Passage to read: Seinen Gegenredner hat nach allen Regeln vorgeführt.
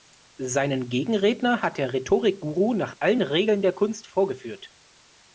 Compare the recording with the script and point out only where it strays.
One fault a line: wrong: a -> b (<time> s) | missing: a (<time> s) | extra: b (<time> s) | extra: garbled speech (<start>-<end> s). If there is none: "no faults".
extra: der Rhetorik Guru (1.8 s)
extra: der Kunst (3.6 s)